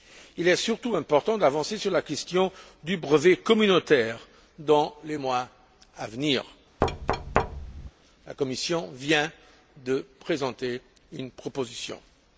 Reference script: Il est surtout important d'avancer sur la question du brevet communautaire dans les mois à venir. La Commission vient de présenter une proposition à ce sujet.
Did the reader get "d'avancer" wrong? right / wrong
right